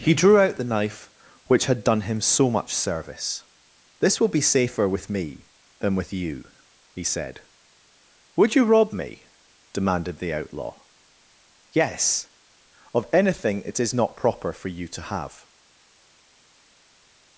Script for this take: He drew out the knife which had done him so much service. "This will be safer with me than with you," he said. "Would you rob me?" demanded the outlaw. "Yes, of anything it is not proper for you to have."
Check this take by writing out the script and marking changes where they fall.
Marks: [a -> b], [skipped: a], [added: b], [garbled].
He drew out the knife which had done him so much service. "This will be safer with me than with you," he said. "Would you rob me?" demanded the outlaw. "Yes, of anything it is not proper for you to have."